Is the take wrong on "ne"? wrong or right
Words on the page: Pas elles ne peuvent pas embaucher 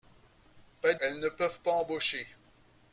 right